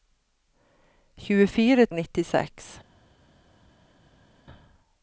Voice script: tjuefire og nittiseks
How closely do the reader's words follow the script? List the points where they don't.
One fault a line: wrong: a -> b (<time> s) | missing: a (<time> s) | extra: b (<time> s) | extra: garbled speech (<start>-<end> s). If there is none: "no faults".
no faults